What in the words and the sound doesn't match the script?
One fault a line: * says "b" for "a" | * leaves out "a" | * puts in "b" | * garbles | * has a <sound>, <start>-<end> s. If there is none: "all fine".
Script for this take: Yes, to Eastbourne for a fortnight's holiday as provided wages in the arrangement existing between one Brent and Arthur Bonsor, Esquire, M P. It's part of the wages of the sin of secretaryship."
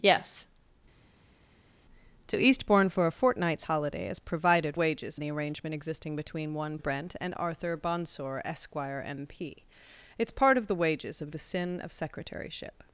all fine